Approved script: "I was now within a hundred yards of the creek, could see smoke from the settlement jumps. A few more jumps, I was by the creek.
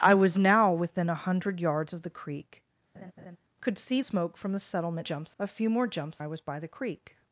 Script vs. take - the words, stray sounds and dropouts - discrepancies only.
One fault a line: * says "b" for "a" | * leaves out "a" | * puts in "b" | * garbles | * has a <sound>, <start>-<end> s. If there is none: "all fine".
* has a laugh, 2.9-3.4 s